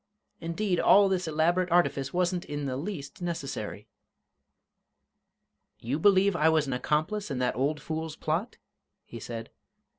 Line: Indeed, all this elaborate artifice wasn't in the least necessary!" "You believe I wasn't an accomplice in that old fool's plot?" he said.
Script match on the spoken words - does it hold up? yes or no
no